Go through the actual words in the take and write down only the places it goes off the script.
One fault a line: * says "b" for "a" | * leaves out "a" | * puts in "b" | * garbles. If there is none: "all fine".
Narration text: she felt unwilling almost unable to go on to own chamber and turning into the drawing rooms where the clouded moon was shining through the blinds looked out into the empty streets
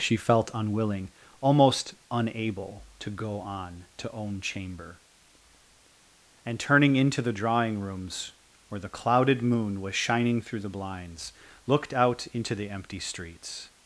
all fine